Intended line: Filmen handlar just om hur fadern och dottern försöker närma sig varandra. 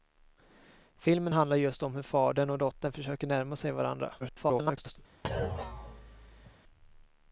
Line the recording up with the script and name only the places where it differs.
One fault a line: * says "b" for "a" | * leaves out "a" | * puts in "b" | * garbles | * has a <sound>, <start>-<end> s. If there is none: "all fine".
* garbles
* has a thud, 5.2-6.6 s